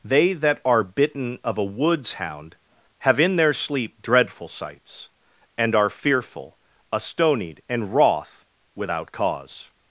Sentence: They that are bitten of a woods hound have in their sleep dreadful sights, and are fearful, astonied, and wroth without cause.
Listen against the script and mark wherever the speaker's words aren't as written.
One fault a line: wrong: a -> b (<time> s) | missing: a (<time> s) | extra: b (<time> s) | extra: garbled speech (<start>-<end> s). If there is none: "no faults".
no faults